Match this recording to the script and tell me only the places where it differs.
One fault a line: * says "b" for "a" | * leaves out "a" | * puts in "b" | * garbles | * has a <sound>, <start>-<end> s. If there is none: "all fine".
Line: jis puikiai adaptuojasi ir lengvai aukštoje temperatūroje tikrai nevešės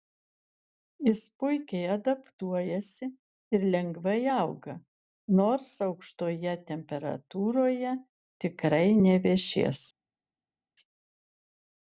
* puts in "auga nors"